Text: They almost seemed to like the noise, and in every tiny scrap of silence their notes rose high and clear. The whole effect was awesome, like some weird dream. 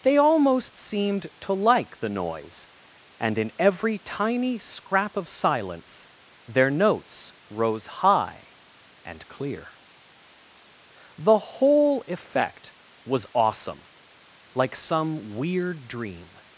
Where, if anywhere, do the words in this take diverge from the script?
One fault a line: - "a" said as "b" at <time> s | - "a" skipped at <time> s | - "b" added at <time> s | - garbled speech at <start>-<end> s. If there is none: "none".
none